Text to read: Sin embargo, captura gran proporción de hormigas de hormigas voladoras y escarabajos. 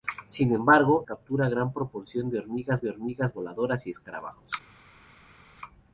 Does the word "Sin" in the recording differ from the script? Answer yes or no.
no